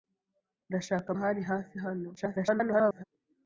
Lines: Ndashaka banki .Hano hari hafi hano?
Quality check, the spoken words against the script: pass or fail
fail